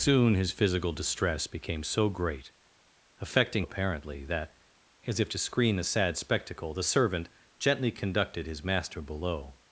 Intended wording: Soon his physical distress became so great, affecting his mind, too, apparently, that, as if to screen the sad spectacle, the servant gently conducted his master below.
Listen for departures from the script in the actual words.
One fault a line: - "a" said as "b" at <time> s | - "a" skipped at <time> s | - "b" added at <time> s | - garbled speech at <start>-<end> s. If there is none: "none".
- "his mind too" skipped at 3.7 s